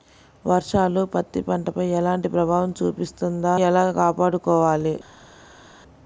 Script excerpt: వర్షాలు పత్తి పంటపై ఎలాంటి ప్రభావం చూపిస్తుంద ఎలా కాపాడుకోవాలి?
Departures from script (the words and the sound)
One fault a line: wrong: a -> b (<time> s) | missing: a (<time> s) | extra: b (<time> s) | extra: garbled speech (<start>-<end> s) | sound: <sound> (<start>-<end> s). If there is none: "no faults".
no faults